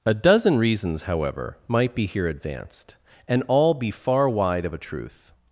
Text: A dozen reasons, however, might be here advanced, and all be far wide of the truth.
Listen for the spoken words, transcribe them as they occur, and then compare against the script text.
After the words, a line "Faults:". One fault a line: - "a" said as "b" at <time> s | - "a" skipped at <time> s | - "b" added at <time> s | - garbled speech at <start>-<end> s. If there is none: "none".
A dozen reasons, however, might be here advanced, and all be far wide of a truth.
Faults:
- "the" said as "a" at 4.7 s